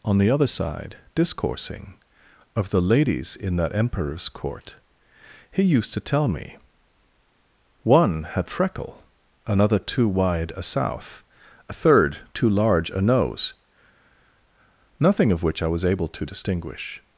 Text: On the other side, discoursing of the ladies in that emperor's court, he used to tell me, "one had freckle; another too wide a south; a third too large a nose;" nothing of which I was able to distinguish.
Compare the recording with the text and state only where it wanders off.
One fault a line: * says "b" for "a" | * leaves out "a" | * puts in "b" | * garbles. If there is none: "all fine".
all fine